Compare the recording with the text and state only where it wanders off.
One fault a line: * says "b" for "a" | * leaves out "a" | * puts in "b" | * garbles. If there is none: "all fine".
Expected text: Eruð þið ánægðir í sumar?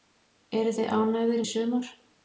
all fine